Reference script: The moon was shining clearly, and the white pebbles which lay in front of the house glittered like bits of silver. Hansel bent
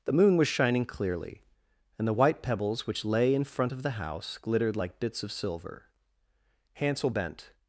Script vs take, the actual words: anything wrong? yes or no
no